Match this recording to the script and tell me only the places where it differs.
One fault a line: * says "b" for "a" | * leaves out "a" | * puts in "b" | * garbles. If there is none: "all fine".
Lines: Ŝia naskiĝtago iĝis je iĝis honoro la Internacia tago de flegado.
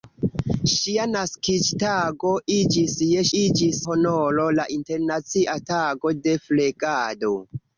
all fine